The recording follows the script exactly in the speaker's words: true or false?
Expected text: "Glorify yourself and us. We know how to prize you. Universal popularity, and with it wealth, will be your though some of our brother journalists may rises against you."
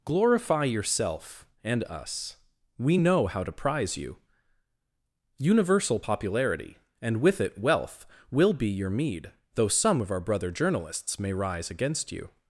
false